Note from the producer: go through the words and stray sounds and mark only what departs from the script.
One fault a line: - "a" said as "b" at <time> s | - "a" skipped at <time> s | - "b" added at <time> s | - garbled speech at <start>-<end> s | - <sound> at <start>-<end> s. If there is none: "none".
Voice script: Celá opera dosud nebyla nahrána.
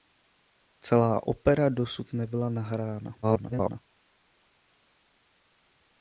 - garbled speech at 3.2-3.8 s